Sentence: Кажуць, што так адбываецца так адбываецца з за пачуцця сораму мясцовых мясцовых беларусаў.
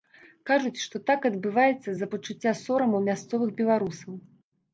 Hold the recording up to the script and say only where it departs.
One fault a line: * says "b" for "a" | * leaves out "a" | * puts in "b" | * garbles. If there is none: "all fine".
* leaves out "так адбываецца"
* leaves out "мясцовых"